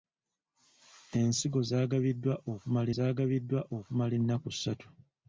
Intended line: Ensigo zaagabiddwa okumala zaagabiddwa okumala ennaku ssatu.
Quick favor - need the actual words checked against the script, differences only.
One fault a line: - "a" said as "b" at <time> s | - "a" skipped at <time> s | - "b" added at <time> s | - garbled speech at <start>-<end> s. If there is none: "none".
none